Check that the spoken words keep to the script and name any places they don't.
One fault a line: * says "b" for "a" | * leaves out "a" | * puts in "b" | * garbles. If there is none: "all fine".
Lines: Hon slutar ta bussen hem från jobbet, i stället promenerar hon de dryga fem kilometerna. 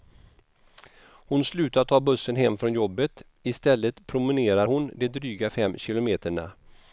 all fine